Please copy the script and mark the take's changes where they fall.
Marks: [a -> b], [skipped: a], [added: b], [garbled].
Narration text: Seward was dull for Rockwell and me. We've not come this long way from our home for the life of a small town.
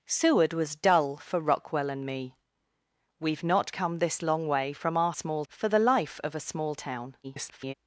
Seward was dull for Rockwell and me. We've not come this long way from our [home -> small] for the life of a small town. [garbled]